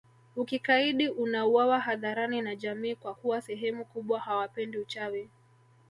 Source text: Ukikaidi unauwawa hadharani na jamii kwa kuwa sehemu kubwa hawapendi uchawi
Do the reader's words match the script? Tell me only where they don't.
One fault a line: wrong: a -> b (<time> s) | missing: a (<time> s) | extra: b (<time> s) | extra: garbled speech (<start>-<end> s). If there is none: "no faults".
no faults